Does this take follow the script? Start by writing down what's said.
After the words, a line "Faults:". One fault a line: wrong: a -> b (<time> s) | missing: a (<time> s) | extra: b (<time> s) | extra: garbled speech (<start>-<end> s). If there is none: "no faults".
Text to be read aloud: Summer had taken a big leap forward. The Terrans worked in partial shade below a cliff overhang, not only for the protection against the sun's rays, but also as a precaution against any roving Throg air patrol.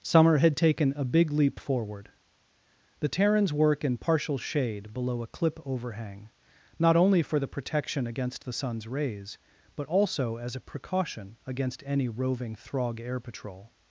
Summer had taken a big leap forward. The Terrans work in partial shade below a clip overhang, not only for the protection against the sun's rays, but also as a precaution against any roving Throg air patrol.
Faults:
wrong: worked -> work (3.5 s)
wrong: cliff -> clip (5.3 s)